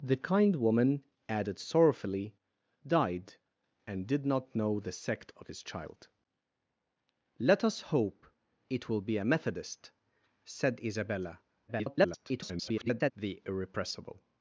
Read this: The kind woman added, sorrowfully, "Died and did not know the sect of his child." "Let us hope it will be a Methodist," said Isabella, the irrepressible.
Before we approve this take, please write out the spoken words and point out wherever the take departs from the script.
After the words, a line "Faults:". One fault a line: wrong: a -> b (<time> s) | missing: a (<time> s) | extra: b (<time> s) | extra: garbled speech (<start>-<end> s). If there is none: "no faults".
The kind woman added, sorrowfully, "Died and did not know the sect of his child." "Let us hope it will be a Methodist," said Isabella, [garbled] the irrepressible.
Faults:
extra: garbled speech (11.7-13.1 s)